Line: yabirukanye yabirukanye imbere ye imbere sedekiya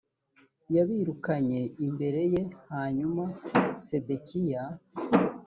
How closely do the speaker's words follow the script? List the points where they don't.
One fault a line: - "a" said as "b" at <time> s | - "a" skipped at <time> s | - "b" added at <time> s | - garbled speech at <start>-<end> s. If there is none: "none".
- "yabirukanye" skipped at 1.6 s
- "imbere" said as "hanyuma" at 2.7 s